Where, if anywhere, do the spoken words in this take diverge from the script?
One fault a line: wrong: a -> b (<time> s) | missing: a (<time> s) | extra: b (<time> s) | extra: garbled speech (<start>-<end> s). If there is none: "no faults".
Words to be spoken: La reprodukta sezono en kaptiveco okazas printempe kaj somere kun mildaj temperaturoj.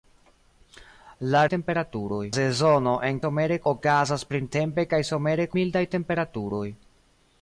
wrong: reprodukta -> temperaturoj (1.6 s)
wrong: kaptiveco -> somere (3.3 s)
missing: kun (5.5 s)